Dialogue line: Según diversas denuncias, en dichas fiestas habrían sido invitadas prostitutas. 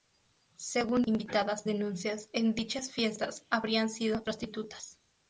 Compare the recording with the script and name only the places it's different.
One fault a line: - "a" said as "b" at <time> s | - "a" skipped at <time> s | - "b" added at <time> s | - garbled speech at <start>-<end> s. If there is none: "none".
- "diversas" said as "invitadas" at 1.0 s
- "invitadas" skipped at 4.2 s